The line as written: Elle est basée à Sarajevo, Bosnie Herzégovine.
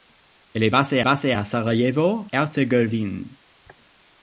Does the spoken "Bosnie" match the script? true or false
false